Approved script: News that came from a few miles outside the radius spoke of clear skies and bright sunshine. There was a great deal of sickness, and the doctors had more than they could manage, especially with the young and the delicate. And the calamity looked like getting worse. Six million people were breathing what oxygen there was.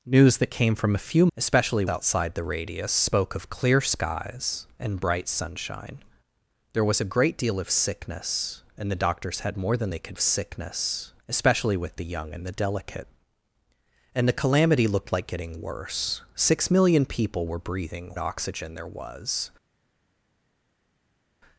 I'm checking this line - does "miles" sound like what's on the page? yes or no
no